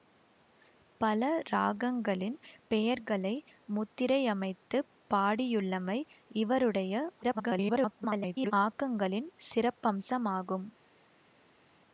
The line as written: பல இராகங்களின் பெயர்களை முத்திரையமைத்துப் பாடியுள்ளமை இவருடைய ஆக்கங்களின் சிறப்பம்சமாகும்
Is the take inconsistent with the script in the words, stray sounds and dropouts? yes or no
yes